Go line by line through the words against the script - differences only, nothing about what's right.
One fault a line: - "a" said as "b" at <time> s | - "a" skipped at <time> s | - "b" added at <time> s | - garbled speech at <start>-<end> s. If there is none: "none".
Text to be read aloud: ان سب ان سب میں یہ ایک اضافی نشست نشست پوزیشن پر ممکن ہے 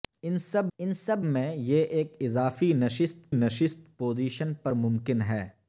none